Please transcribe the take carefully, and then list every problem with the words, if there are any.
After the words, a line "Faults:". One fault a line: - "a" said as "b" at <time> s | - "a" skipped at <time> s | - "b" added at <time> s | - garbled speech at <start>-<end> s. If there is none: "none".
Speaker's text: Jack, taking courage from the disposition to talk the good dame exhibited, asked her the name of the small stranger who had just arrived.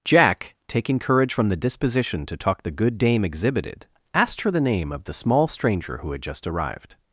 Jack, taking courage from the disposition to talk the good dame exhibited, asked her the name of the small stranger who had just arrived.
Faults:
none